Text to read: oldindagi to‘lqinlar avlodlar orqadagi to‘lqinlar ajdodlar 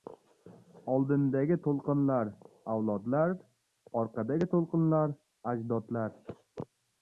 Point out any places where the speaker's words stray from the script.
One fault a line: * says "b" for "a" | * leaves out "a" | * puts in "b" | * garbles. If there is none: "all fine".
all fine